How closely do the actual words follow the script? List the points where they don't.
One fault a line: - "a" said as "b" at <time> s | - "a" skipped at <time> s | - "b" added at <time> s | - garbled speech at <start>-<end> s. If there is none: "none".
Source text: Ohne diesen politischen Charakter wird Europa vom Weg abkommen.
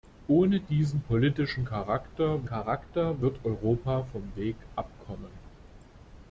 - "Charakter" added at 2.4 s